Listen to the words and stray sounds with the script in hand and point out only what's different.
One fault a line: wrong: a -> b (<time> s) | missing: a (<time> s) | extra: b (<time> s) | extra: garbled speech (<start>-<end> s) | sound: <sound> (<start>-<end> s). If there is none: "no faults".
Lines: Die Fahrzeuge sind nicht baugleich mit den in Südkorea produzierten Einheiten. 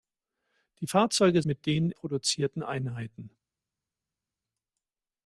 missing: sind nicht baugleich (1.4 s)
missing: in Südkorea (1.9 s)